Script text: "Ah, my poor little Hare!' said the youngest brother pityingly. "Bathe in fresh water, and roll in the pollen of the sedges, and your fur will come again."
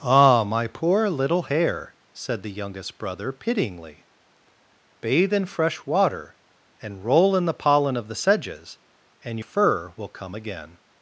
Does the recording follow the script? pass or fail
fail